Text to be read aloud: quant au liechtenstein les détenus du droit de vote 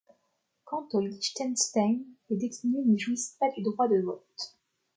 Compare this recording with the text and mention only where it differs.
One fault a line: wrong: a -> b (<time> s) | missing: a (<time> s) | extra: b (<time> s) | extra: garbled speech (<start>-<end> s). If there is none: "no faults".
extra: n'y jouissent pas (2.9 s)